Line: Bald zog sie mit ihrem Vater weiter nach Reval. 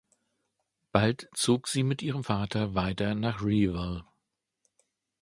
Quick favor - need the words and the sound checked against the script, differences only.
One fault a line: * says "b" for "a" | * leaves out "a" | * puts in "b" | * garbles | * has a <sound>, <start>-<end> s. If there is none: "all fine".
all fine